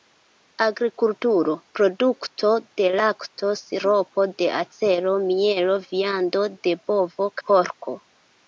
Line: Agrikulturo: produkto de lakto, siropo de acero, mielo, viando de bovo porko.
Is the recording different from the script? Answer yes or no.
no